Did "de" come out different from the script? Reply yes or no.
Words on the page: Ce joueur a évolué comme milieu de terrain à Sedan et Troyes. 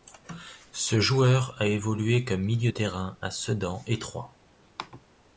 yes